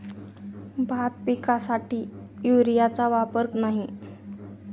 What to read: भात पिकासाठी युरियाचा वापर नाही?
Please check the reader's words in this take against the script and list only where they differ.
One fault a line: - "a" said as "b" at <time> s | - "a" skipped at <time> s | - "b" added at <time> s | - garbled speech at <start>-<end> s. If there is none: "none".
none